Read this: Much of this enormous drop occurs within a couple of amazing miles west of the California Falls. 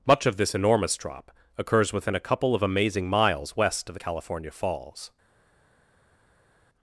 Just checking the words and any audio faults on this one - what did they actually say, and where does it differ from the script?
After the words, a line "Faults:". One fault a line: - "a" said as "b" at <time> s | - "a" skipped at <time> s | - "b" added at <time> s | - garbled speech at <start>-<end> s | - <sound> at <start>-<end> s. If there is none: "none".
Much of this enormous drop occurs within a couple of amazing miles west of the California Falls.
Faults:
none